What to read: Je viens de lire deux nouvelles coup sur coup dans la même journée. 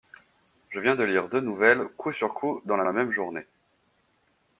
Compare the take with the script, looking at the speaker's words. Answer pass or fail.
fail